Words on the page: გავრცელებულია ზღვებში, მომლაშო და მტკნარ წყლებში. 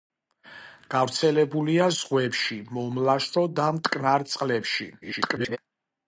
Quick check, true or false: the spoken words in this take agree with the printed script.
false